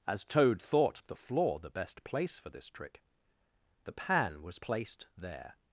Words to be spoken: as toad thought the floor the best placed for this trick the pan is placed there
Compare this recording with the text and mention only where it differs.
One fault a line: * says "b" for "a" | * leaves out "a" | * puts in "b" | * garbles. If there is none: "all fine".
* says "place" for "placed"
* says "was" for "is"